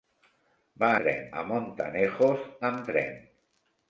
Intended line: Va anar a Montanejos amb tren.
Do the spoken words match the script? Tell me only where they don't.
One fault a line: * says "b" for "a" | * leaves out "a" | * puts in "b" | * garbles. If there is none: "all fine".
* says "tren" for "anar"